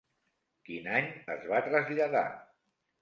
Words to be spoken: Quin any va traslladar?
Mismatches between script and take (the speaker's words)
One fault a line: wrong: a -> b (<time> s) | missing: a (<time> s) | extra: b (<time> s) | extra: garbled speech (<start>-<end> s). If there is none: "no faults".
extra: es (1.3 s)